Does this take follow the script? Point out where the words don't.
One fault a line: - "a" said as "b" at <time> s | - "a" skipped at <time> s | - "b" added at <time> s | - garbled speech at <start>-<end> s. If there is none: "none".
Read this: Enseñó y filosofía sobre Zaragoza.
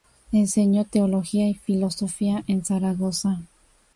- "teología" added at 0.8 s
- "sobre" said as "en" at 2.5 s